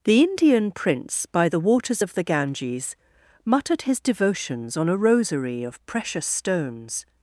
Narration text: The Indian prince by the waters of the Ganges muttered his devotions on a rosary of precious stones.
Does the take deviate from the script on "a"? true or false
false